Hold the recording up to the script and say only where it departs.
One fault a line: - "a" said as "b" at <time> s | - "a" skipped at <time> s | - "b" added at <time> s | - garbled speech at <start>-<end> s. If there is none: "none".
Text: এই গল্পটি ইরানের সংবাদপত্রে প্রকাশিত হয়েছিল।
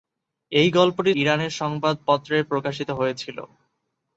none